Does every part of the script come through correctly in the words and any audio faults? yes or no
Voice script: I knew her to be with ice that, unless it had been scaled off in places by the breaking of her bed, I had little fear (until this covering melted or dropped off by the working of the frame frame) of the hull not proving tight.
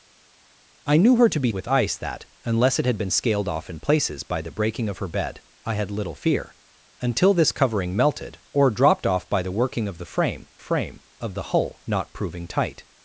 yes